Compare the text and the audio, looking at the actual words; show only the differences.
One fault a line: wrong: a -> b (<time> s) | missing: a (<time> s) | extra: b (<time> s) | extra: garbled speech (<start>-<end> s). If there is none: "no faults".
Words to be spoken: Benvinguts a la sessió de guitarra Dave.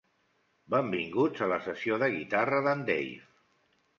extra: d'en (2.7 s)